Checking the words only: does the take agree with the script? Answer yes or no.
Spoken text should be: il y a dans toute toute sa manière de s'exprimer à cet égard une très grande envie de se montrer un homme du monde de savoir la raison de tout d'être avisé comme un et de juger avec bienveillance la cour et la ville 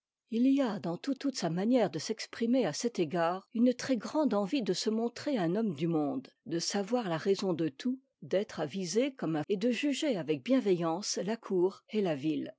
yes